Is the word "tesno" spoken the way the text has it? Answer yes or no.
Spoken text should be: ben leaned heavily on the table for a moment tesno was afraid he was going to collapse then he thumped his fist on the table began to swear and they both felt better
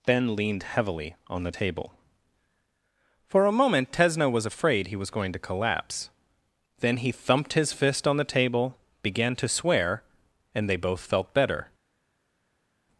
yes